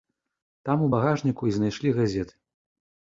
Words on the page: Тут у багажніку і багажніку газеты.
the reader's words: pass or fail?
fail